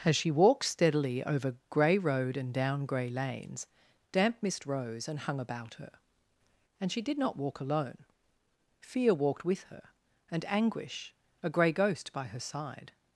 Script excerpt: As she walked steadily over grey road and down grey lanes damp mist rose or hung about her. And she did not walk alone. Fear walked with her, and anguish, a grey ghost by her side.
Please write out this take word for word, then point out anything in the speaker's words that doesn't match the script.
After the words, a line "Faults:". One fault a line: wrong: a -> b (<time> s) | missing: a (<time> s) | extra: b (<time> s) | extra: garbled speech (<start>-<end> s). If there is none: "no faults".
As she walked steadily over grey road and down grey lanes damp mist rose and hung about her. And she did not walk alone. Fear walked with her, and anguish, a grey ghost by her side.
Faults:
wrong: or -> and (5.1 s)